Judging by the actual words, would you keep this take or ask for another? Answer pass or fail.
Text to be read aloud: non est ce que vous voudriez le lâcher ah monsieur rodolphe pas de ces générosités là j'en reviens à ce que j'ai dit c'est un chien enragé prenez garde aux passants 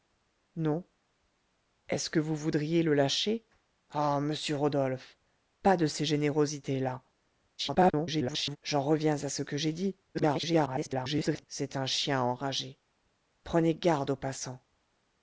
fail